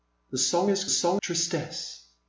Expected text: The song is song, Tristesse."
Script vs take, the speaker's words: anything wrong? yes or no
no